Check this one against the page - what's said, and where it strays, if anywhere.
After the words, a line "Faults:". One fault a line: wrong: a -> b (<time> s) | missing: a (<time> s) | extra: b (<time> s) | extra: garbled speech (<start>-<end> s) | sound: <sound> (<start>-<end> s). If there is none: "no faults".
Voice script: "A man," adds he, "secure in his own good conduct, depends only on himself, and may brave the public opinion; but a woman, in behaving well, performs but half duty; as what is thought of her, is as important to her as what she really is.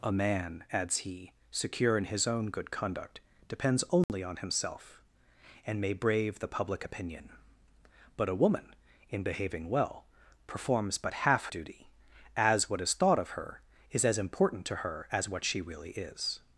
"A man," adds he, "secure in his own good conduct, depends only on himself, and may brave the public opinion; but a woman, in behaving well, performs but half duty; as what is thought of her, is as important to her as what she really is.
Faults:
sound: dropout (4.0-4.1 s)